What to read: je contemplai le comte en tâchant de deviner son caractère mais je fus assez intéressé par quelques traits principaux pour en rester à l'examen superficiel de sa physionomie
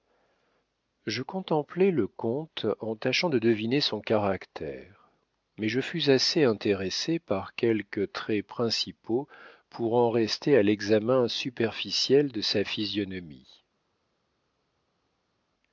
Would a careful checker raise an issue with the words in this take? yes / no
no